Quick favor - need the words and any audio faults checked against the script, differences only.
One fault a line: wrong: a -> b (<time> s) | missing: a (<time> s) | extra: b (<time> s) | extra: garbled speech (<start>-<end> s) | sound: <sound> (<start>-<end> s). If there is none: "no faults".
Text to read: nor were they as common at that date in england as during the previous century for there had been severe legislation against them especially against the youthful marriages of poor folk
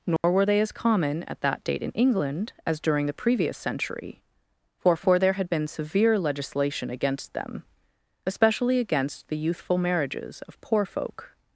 sound: dropout (0.2-0.2 s)
extra: for (5.0 s)